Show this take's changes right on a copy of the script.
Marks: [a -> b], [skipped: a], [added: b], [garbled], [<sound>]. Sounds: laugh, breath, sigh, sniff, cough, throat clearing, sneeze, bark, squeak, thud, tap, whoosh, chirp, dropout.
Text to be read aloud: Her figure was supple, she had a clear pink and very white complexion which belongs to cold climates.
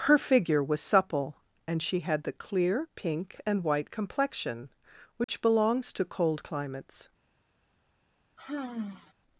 Her figure was supple, [added: and] she had [a -> the] clear pink and [skipped: very] white complexion which [dropout] belongs to cold climates. [sigh]